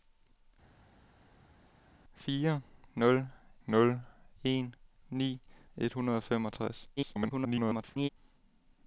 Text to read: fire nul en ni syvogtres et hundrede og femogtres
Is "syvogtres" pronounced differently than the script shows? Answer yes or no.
yes